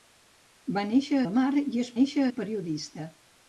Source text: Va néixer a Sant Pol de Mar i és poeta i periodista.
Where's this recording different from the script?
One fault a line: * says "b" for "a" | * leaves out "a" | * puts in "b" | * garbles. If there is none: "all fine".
* leaves out "a Sant Pol"
* says "néixer" for "poeta"